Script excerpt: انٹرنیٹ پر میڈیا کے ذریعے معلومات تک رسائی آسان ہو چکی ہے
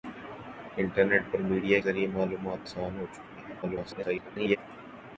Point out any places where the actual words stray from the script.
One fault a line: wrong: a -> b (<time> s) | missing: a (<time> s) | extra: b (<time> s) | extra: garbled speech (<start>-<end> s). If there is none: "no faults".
missing: کے (1.8 s)
missing: تک رسائی (2.7 s)
extra: garbled speech (3.6-4.6 s)